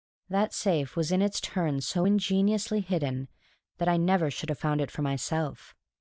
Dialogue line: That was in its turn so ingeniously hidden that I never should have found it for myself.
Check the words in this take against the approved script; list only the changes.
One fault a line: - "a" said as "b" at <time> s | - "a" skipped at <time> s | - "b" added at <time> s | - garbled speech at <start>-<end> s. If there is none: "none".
- "safe" added at 0.5 s